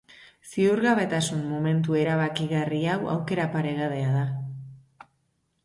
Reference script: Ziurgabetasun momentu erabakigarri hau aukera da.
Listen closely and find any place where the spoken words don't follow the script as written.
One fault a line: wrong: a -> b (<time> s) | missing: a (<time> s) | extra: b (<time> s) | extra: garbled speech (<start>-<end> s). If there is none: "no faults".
extra: paregabea (3.6 s)